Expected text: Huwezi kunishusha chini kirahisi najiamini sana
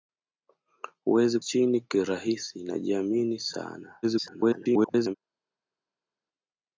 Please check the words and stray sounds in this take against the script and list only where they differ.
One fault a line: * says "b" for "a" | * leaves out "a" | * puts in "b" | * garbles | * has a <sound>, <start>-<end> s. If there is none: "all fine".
* leaves out "kunishusha"
* garbles